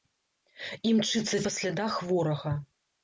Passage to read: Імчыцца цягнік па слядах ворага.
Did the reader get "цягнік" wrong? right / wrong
wrong